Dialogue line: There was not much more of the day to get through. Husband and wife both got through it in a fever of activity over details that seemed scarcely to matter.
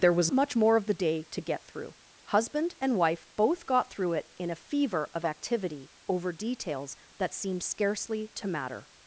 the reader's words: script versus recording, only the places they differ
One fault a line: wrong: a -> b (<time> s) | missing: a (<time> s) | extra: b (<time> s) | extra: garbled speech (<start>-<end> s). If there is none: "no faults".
missing: not (0.3 s)